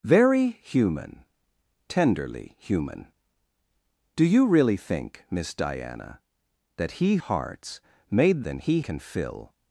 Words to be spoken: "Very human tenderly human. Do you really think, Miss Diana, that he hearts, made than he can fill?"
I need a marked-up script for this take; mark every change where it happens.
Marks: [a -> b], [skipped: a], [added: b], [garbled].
"Very human tenderly human. Do you really think, Miss Diana, that he hearts, made than he can fill?"